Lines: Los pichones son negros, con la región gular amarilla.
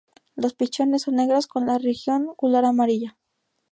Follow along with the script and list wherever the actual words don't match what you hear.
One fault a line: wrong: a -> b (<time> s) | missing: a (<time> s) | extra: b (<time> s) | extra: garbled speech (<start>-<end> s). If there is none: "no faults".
no faults